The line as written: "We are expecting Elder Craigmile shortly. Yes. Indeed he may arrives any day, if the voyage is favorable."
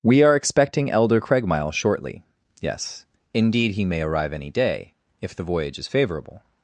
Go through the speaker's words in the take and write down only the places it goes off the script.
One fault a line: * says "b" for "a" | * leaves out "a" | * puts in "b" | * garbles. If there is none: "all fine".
* says "arrive" for "arrives"